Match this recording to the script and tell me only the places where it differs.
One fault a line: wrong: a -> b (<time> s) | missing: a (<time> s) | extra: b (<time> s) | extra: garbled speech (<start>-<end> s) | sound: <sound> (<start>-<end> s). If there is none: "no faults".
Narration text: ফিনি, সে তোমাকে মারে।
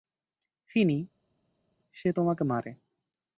no faults